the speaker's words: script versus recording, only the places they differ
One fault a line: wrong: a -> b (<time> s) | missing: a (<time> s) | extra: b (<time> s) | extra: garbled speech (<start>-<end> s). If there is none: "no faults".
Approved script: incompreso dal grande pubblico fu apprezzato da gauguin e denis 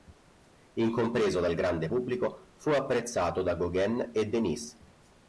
no faults